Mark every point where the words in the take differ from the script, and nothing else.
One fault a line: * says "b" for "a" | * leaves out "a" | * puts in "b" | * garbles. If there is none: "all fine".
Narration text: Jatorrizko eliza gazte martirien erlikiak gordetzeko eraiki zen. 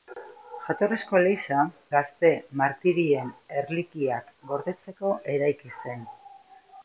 all fine